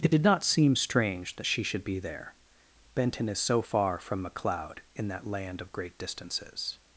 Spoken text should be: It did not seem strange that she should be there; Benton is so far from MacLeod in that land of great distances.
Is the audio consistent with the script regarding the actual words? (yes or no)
yes